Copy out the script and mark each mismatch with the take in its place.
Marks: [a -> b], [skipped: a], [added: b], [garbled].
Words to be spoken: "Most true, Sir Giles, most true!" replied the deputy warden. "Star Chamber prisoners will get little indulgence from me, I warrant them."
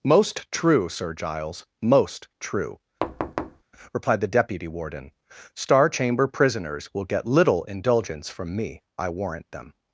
"Most true, Sir Giles, most true!" replied the deputy warden. "Star Chamber prisoners will get little indulgence from me, I warrant them."